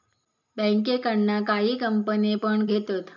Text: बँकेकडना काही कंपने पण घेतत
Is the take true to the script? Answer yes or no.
yes